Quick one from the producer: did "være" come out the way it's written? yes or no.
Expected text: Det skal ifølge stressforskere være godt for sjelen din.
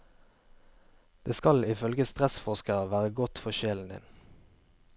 yes